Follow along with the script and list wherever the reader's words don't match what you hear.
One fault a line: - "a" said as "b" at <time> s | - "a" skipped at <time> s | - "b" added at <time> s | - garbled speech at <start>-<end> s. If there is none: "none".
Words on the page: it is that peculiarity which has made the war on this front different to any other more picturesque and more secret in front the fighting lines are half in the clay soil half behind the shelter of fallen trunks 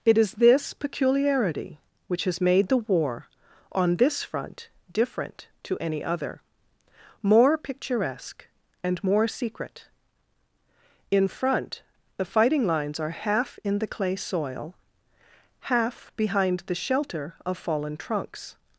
- "that" said as "this" at 0.3 s